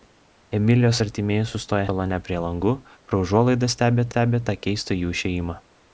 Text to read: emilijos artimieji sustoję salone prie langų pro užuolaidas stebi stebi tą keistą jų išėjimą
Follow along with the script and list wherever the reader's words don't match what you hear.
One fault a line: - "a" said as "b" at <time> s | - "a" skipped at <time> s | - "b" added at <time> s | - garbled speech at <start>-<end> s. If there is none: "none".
none